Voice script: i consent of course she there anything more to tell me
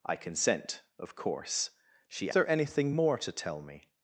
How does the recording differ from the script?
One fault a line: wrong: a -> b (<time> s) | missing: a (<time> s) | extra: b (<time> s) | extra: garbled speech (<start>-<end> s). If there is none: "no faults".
no faults